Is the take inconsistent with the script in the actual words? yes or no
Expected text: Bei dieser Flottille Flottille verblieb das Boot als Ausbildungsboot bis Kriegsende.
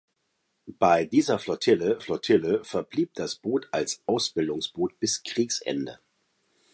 no